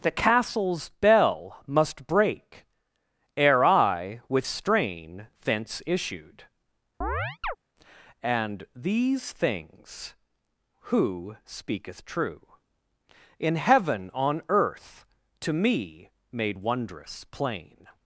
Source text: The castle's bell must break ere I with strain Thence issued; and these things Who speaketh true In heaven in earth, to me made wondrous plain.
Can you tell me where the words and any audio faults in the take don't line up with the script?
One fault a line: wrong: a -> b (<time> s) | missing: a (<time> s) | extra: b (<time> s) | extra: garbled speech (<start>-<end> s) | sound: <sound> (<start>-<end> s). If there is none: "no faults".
sound: chirp (7.0-7.6 s)
wrong: in -> on (14.1 s)